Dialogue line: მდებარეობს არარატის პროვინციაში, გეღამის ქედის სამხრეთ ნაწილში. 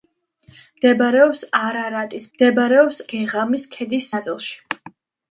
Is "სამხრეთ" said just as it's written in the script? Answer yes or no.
no